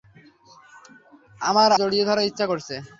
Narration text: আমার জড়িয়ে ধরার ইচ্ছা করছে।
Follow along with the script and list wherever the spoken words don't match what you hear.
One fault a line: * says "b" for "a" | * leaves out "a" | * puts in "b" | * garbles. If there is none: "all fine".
all fine